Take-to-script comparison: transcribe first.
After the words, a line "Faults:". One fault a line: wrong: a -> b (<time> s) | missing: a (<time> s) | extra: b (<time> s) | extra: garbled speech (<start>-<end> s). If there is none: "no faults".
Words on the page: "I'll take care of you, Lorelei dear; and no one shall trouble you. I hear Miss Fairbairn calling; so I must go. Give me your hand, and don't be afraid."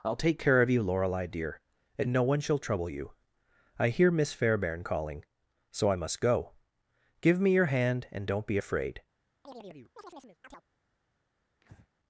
"I'll take care of you, Lorelei dear; and no one shall trouble you. I hear Miss Fairbairn calling; so I must go. Give me your hand, and don't be afraid."
Faults:
no faults